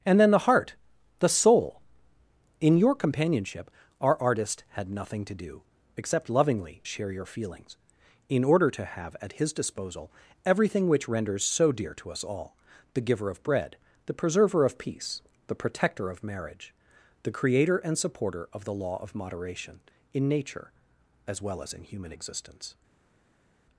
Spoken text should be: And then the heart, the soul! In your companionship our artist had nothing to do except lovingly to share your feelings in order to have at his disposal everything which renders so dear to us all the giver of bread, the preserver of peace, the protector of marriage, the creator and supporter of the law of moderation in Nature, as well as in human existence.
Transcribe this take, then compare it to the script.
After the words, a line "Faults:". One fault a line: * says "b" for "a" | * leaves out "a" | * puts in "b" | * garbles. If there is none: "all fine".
And then the heart, the soul! In your companionship our artist had nothing to do except lovingly share your feelings in order to have at his disposal everything which renders so dear to us all the giver of bread, the preserver of peace, the protector of marriage, the creator and supporter of the law of moderation in Nature, as well as in human existence.
Faults:
* leaves out "to"